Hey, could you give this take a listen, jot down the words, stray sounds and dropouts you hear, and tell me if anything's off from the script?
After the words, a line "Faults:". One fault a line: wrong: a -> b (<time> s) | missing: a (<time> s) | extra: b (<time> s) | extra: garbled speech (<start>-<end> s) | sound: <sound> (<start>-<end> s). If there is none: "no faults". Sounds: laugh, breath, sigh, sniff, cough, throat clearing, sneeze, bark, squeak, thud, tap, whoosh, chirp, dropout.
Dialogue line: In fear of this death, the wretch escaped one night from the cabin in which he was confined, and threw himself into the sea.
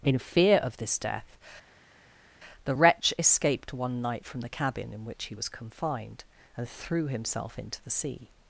In fear of this death, the wretch escaped one night from the cabin in which he was confined, and threw himself into the sea.
Faults:
no faults